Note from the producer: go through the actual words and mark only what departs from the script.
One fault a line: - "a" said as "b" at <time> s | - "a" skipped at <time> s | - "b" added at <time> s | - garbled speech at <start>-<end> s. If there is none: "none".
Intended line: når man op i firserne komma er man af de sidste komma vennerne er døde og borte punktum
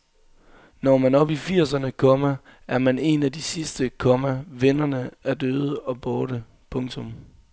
- "en" added at 3.0 s